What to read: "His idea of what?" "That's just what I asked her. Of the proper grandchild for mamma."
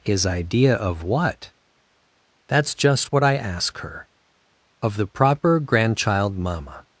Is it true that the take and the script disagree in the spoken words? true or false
true